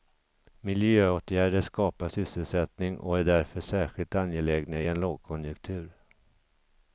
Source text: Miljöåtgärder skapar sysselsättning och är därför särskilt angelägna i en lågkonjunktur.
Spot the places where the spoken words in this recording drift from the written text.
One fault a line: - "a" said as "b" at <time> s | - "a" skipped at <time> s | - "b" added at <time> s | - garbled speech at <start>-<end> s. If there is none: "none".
none